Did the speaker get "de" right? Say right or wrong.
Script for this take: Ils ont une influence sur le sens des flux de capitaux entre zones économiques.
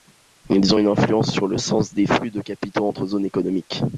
right